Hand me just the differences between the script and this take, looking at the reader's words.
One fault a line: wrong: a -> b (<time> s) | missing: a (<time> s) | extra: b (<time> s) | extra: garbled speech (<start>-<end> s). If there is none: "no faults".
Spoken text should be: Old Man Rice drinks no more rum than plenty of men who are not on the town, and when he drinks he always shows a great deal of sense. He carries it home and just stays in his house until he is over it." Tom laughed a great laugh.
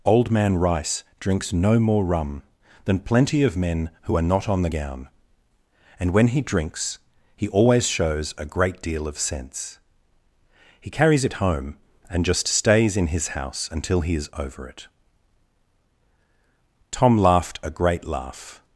wrong: town -> gown (4.7 s)